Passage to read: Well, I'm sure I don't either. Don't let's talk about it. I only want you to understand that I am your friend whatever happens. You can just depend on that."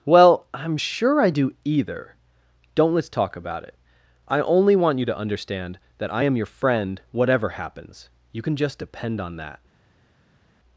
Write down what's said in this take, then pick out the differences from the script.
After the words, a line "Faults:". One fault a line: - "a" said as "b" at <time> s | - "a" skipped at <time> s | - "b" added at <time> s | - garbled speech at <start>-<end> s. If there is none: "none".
Well, I'm sure I do either. Don't let's talk about it. I only want you to understand that I am your friend whatever happens. You can just depend on that."
Faults:
- "don't" said as "do" at 1.3 s